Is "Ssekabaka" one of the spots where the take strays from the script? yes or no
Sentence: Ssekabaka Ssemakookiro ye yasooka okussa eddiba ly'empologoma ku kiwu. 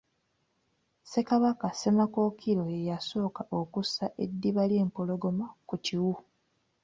no